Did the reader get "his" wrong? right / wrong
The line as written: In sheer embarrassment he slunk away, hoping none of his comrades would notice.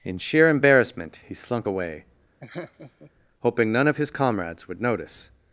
right